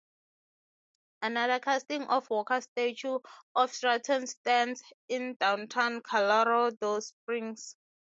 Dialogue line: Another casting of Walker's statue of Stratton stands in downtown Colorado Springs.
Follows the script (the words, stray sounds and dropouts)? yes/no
yes